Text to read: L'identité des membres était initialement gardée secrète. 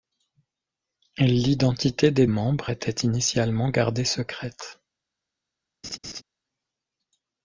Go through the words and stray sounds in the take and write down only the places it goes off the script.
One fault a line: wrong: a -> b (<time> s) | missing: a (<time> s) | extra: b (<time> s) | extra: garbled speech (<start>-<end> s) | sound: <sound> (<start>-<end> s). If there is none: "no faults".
sound: laugh (5.8-6.2 s)